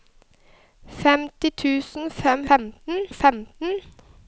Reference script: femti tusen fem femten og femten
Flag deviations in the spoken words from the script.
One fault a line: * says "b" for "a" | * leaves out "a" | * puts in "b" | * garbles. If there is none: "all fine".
all fine